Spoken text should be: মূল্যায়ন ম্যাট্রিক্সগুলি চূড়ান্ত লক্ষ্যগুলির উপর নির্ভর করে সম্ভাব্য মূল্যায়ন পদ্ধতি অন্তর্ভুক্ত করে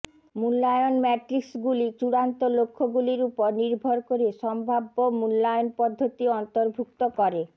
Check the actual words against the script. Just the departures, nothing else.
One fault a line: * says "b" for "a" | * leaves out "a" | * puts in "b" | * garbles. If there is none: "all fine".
all fine